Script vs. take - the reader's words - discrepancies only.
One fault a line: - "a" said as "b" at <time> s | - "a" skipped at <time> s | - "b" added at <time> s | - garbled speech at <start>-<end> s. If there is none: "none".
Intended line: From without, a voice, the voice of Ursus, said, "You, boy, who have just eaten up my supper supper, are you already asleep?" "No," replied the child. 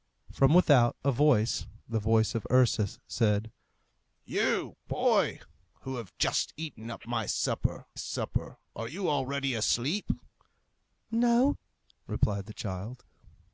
none